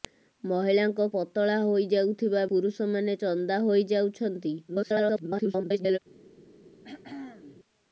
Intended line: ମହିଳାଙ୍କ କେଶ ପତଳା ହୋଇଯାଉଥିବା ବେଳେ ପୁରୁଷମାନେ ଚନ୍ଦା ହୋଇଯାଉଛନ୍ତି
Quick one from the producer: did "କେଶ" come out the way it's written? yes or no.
no